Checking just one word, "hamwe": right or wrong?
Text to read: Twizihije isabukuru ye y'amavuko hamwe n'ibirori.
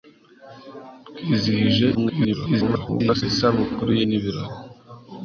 wrong